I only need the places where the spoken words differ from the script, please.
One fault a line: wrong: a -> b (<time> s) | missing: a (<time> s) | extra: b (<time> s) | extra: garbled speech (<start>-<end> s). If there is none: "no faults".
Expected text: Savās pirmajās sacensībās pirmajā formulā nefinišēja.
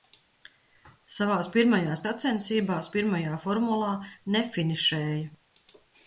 no faults